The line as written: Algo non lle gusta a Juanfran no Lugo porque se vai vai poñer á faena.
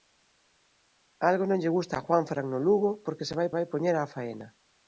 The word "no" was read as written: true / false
true